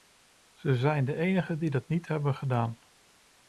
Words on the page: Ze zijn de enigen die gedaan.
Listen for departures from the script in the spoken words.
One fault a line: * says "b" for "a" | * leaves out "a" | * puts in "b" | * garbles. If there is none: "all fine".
* puts in "dat niet hebben"